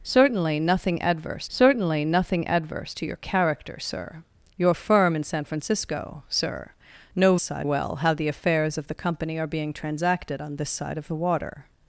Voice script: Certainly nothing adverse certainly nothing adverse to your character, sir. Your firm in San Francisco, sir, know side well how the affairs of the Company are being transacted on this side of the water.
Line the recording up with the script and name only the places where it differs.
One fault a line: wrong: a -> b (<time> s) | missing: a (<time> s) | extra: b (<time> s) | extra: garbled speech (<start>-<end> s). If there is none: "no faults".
no faults